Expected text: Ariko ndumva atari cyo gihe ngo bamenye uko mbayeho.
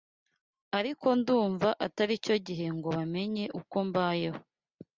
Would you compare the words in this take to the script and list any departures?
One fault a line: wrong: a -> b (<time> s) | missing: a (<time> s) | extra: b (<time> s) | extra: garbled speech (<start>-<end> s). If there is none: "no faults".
no faults